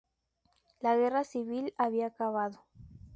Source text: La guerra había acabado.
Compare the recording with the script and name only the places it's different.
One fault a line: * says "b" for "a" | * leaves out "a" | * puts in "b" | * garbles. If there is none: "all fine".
* puts in "civil"